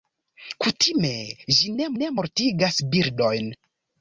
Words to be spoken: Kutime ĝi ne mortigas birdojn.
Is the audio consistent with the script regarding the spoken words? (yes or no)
no